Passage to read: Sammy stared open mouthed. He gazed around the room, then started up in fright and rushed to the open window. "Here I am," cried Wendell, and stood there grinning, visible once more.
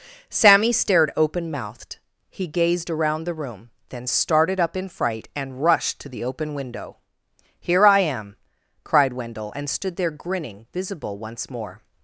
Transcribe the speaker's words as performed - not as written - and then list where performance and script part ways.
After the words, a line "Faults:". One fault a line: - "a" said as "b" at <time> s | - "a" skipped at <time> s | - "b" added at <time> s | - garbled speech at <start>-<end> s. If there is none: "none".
Sammy stared open mouthed. He gazed around the room, then started up in fright and rushed to the open window. "Here I am," cried Wendell, and stood there grinning, visible once more.
Faults:
none